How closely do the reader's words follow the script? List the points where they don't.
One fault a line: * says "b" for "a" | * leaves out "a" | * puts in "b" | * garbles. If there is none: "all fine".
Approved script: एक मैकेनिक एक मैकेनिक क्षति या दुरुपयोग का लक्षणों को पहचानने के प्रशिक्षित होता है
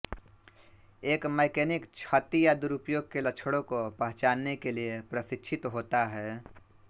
* leaves out "एक मैकेनिक"
* says "के" for "का"
* puts in "लिए"